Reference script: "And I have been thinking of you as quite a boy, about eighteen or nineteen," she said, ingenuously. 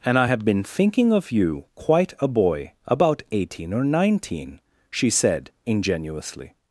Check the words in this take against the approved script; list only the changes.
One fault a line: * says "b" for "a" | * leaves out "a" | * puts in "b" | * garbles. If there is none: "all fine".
* leaves out "as"